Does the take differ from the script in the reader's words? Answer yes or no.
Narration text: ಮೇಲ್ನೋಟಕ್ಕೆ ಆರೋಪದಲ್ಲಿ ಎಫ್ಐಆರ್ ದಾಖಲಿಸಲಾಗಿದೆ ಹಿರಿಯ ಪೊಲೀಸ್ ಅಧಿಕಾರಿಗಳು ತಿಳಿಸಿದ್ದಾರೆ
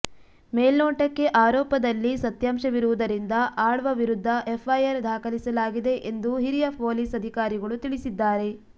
yes